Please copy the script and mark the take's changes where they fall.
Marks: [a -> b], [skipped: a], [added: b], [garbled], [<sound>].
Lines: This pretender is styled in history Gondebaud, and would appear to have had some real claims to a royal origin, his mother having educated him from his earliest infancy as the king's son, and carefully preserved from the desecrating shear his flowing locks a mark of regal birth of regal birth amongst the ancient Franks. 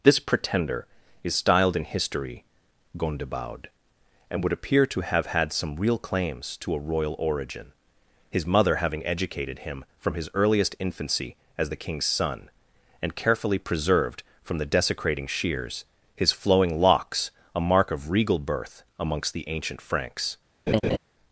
This pretender is styled in history Gondebaud, and would appear to have had some real claims to a royal origin, his mother having educated him from his earliest infancy as the king's son, and carefully preserved from the desecrating [shear -> shears] his flowing locks a mark of regal birth [skipped: of regal birth] amongst the ancient Franks. [laugh]